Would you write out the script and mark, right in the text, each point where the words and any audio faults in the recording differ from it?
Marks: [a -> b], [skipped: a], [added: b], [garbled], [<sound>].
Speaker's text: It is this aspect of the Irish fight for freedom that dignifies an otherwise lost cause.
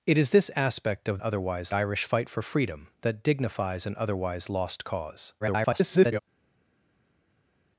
It is this aspect of [the -> otherwise] Irish fight for freedom that dignifies an otherwise lost cause. [garbled]